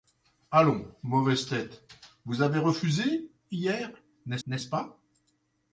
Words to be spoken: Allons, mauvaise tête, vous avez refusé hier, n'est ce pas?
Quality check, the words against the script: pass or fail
fail